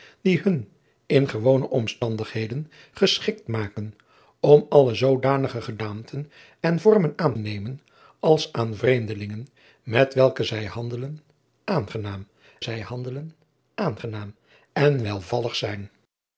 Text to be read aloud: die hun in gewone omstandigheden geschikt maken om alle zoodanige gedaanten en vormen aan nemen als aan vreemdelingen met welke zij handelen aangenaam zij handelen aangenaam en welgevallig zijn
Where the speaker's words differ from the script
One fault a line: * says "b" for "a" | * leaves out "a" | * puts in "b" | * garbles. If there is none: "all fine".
all fine